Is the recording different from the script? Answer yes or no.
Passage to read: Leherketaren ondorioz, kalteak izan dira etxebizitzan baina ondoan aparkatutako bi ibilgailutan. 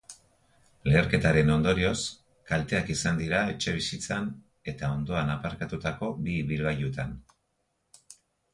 yes